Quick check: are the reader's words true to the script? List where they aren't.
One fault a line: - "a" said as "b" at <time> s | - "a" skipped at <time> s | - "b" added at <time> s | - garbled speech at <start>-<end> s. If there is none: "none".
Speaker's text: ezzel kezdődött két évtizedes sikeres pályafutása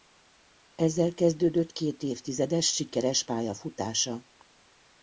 none